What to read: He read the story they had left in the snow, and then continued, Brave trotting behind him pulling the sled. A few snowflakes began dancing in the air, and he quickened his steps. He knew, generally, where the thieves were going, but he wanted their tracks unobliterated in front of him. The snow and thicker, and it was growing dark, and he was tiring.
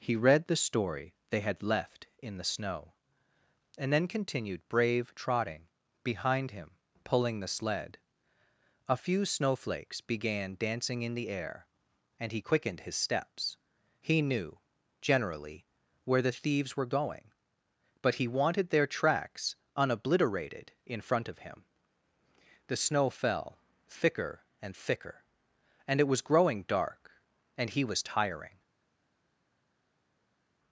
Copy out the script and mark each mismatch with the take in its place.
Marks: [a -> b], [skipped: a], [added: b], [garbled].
He read the story they had left in the snow, and then continued, Brave trotting behind him pulling the sled. A few snowflakes began dancing in the air, and he quickened his steps. He knew, generally, where the thieves were going, but he wanted their tracks unobliterated in front of him. The snow [added: fell thicker] and thicker, and it was growing dark, and he was tiring.